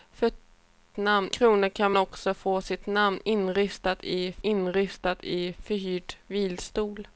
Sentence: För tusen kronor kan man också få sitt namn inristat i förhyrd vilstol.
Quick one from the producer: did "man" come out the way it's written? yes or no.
no